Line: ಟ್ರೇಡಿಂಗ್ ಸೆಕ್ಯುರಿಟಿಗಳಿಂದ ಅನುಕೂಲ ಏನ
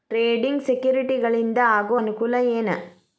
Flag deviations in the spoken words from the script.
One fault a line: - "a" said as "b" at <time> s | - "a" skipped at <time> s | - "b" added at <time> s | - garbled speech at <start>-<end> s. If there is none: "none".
- "ಆಗೋ" added at 1.7 s